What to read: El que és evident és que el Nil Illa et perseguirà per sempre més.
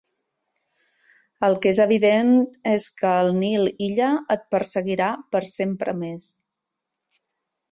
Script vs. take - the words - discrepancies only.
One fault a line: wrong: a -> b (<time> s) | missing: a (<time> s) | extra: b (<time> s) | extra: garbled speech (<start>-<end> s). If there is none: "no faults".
no faults